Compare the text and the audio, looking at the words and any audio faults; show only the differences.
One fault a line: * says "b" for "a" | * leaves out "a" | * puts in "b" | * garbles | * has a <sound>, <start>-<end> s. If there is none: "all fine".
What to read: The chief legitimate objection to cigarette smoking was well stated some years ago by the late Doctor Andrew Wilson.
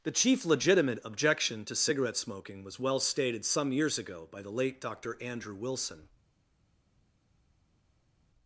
all fine